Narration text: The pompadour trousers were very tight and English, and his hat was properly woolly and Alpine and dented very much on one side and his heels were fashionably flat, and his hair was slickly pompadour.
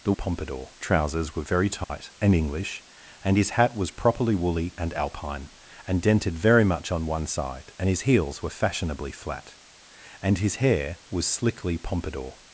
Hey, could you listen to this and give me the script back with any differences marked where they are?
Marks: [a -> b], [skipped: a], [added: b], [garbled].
The pompadour trousers were very tight and English, and his hat was properly woolly and Alpine and dented very much on one side and his heels were fashionably flat, and his hair was slickly pompadour.